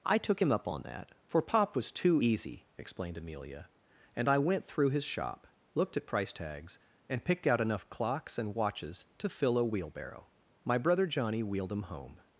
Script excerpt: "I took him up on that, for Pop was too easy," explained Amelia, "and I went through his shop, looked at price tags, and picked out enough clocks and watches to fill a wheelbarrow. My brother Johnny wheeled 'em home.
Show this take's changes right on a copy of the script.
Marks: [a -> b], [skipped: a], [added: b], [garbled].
"I took him up on that, for Pop was too easy," explained Amelia, "and I went through his shop, looked at price tags, and picked out enough clocks and watches to fill a wheelbarrow. My brother Johnny wheeled 'em home.